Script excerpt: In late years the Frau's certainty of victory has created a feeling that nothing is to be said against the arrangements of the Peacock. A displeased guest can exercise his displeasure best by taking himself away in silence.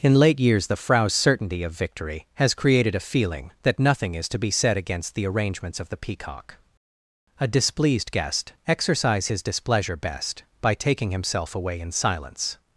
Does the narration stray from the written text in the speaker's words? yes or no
yes